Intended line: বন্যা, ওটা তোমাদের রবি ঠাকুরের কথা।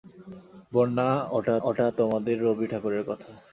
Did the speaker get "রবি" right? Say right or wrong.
right